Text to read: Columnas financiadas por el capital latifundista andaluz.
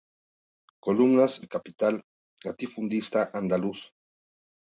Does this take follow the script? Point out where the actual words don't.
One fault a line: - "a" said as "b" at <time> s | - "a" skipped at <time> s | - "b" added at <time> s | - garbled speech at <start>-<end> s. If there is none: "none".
- "financiadas por" skipped at 1.4 s